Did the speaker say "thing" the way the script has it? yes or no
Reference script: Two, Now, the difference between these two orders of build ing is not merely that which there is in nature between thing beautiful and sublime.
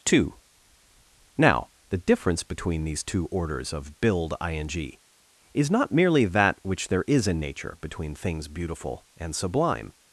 no